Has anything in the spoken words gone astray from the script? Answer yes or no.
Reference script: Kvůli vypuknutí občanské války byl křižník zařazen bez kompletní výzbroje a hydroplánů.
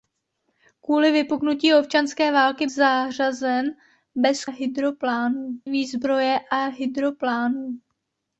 yes